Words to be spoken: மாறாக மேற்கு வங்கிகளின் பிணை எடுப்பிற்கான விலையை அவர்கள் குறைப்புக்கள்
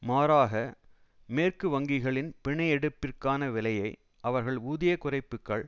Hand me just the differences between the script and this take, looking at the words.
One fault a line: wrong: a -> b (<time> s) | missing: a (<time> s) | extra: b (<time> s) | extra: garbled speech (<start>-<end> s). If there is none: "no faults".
extra: ஊதிய (4.6 s)